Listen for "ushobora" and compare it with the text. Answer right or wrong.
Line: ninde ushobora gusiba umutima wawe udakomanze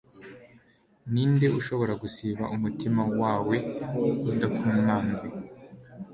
right